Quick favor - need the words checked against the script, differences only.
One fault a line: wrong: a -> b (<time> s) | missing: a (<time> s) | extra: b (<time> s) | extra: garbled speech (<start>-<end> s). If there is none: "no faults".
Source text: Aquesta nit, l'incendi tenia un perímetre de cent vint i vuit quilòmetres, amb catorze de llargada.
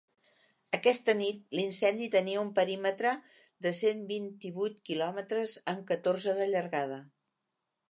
no faults